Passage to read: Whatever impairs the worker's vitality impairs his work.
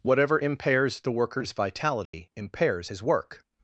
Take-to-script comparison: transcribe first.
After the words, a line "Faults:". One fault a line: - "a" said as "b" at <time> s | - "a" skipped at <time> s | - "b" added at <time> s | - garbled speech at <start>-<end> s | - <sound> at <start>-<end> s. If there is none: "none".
Whatever impairs the worker's vitality impairs his work.
Faults:
- dropout at 2.1-2.1 s